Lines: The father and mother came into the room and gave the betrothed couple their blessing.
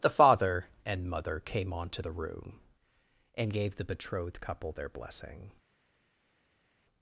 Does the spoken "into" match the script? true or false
false